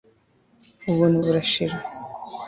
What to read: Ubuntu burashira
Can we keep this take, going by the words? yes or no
yes